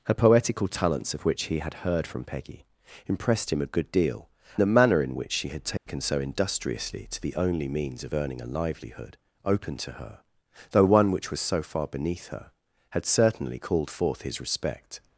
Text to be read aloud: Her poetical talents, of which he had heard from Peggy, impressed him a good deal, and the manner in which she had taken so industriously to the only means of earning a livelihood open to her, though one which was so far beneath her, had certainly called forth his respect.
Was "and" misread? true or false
true